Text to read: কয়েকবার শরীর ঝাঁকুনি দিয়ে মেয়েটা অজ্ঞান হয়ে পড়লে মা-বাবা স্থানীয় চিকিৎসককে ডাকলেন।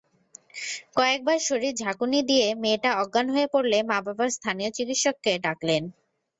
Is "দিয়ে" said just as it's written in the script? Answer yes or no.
yes